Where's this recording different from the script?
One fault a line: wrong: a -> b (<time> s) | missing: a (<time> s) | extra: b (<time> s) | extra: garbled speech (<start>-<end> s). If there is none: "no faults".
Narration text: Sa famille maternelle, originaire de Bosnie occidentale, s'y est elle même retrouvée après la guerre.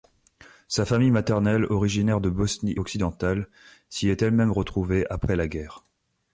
no faults